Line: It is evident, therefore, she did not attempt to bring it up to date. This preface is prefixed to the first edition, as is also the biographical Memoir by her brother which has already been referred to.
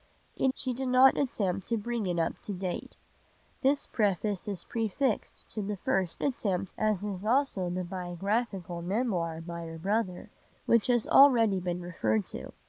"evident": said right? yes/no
no